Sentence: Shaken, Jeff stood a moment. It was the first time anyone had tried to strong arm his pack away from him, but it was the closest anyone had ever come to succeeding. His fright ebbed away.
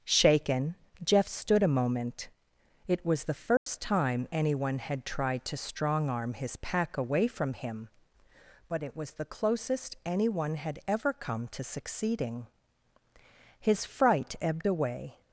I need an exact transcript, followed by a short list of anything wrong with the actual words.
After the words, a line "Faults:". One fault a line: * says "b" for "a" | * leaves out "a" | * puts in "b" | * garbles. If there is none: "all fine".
Shaken, Jeff stood a moment. It was the first time anyone had tried to strong arm his pack away from him, but it was the closest anyone had ever come to succeeding. His fright ebbed away.
Faults:
all fine